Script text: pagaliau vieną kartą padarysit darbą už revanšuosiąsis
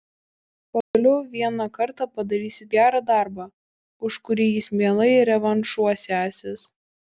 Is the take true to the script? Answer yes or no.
no